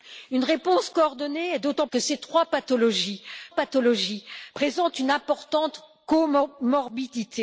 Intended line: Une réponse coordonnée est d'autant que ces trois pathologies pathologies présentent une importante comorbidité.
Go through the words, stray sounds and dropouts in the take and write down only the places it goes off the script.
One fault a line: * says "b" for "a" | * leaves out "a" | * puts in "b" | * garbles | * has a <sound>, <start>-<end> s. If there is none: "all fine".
all fine